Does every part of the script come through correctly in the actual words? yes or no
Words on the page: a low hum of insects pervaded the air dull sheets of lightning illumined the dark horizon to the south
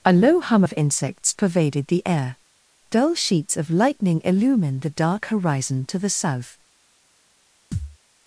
yes